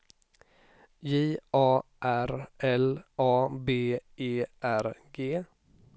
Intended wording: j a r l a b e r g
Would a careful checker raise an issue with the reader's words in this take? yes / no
no